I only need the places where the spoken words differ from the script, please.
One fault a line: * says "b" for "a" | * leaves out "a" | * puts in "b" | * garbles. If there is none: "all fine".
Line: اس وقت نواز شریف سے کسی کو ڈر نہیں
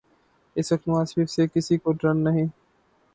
all fine